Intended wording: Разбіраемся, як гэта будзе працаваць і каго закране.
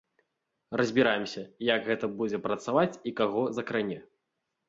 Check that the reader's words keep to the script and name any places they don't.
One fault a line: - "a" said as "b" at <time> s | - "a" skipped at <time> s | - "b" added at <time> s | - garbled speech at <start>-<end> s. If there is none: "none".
none